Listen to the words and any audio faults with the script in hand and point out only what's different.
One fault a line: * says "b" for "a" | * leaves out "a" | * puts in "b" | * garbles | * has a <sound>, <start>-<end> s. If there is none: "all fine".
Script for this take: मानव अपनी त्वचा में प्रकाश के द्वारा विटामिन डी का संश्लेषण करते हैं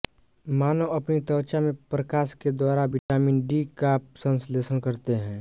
* has a dropout, 3.0-3.1 s